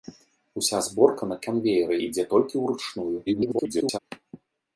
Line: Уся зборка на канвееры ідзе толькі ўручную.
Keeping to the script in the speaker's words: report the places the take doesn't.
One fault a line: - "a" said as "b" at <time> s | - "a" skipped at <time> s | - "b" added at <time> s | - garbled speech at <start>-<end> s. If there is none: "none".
- garbled speech at 3.3-4.0 s